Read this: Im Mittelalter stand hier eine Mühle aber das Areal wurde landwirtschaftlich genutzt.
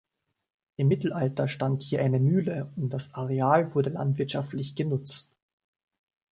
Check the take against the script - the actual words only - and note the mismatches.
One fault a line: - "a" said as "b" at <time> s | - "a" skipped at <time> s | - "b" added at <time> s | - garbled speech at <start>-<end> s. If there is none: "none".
- "aber" said as "und" at 2.8 s